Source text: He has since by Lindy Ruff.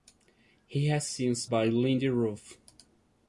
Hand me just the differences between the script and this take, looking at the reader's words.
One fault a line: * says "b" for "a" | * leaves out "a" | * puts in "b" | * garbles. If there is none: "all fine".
all fine